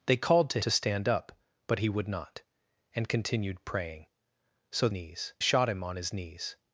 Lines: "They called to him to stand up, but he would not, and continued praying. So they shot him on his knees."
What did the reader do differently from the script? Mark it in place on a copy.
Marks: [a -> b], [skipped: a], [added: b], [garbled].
"They called to [skipped: him] to stand up, but he would not, and continued praying. So [they -> knees] shot him on his knees."